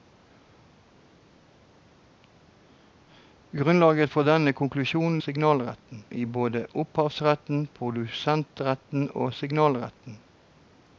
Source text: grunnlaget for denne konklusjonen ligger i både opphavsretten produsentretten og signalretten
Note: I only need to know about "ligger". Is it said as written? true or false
false